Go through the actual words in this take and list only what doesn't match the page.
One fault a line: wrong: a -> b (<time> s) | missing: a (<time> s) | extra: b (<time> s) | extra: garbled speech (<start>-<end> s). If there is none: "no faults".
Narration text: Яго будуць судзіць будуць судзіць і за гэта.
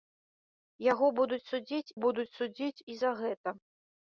no faults